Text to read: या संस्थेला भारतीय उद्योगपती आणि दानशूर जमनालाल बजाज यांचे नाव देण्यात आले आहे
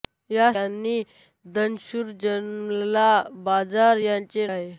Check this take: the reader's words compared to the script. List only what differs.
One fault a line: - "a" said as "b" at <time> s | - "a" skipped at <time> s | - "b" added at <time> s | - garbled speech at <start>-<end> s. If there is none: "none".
- "संस्थेला भारतीय उद्योगपती" skipped at 0.5 s
- "नाव देण्यात आले" skipped at 4.5 s